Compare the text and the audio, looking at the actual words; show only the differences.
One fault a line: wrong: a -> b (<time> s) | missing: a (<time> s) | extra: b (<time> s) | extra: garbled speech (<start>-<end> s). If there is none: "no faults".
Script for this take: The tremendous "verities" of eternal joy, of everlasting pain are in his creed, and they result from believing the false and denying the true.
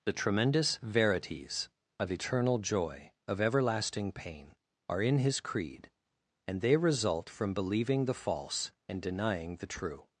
no faults